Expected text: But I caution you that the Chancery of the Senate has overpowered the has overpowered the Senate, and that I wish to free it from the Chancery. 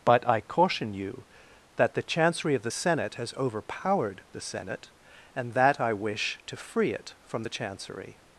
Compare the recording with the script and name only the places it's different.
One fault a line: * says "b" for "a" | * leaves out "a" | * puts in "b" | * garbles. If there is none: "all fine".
* leaves out "has overpowered the"